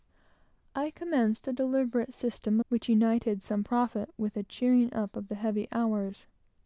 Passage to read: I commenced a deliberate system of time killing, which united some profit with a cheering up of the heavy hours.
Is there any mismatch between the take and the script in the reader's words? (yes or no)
yes